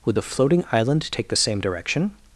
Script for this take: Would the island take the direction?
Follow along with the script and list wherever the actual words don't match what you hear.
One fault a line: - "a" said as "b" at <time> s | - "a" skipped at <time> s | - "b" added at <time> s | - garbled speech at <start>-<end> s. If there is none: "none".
- "floating" added at 0.2 s
- "same" added at 1.3 s